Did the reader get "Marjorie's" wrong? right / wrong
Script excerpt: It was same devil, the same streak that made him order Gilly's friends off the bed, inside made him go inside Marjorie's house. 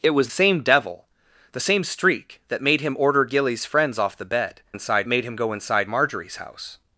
right